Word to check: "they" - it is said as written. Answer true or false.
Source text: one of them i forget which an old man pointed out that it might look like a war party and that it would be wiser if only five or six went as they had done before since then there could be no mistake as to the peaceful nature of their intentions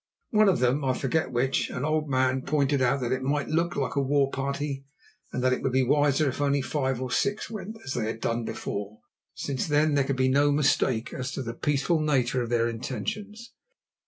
true